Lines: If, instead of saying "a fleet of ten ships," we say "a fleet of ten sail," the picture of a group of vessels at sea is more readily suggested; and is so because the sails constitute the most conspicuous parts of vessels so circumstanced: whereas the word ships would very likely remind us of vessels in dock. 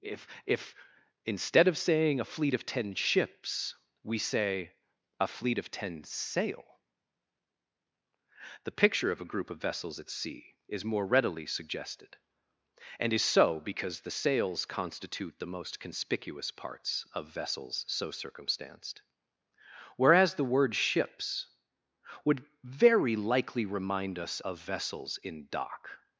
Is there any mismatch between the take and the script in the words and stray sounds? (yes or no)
yes